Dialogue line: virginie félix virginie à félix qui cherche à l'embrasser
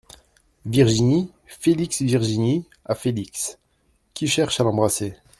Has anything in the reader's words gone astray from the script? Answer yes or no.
no